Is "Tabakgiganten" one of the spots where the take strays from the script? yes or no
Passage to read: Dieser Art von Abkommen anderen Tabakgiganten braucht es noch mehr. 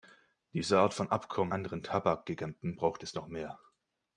no